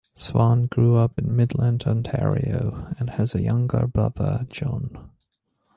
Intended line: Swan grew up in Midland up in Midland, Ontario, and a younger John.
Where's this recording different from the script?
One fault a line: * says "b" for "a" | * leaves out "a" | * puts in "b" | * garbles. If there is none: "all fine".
* leaves out "up in Midland"
* puts in "has"
* puts in "brother"